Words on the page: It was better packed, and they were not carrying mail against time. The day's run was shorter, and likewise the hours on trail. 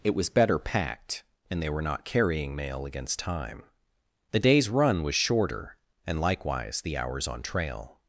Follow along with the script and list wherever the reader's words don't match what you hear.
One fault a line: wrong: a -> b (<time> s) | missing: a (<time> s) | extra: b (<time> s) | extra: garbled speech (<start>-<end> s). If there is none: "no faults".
no faults